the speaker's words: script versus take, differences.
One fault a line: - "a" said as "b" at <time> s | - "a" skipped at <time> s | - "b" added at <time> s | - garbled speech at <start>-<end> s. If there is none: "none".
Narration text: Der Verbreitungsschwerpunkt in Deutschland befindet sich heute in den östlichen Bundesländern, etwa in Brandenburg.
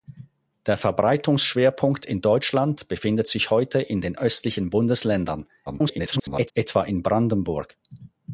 - garbled speech at 5.7-6.5 s